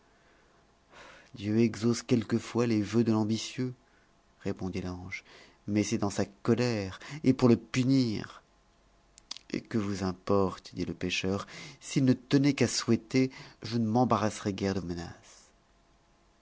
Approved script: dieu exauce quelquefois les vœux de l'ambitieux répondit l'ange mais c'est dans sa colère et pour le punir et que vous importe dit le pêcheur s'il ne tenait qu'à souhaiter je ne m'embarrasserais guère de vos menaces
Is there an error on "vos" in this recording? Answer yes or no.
yes